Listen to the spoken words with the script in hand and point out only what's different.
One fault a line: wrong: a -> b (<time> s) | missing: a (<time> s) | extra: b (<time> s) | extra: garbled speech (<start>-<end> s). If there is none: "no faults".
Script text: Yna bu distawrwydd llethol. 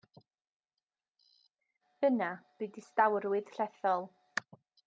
no faults